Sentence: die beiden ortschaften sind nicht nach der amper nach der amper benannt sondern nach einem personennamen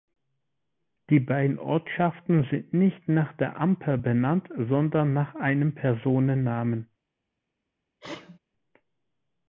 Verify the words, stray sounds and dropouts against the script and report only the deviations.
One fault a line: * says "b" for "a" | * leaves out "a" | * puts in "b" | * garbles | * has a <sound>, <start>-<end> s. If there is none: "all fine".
* leaves out "nach der amper"
* has a sneeze, 8.0-8.4 s